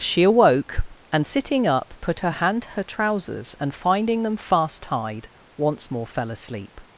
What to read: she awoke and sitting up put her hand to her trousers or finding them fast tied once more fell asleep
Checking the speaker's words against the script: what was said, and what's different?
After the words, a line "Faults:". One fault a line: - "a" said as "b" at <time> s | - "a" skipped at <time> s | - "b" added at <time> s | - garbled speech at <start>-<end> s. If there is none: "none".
she awoke and sitting up put her hand to her trousers and finding them fast tied once more fell asleep
Faults:
- "or" said as "and" at 3.6 s